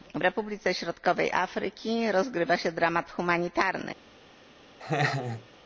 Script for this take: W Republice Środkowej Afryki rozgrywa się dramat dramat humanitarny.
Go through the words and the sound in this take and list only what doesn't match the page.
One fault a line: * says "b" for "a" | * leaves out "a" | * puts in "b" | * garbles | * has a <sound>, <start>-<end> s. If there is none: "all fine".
* leaves out "dramat"
* has a laugh, 4.8-5.5 s